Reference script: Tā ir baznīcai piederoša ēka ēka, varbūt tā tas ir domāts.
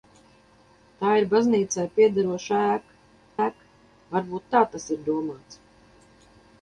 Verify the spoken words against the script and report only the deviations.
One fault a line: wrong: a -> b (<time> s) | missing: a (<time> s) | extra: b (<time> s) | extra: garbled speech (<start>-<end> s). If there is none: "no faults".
no faults